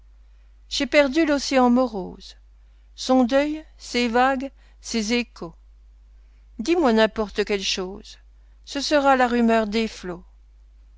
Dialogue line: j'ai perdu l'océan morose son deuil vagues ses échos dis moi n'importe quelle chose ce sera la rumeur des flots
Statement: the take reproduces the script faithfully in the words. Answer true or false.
false